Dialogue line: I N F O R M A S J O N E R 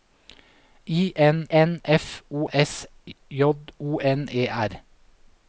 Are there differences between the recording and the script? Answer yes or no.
yes